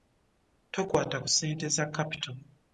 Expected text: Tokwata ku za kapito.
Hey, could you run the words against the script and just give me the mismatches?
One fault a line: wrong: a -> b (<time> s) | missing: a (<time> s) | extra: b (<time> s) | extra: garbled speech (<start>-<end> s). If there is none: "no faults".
extra: ssente (1.3 s)